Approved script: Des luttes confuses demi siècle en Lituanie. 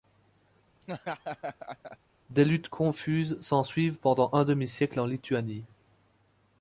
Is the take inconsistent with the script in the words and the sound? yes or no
yes